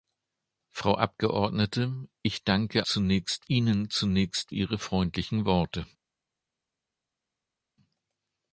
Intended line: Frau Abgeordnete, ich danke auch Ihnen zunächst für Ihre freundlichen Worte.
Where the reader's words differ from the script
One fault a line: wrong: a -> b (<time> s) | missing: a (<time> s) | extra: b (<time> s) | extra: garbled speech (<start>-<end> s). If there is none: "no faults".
wrong: auch -> zunächst (2.8 s)
missing: für (4.6 s)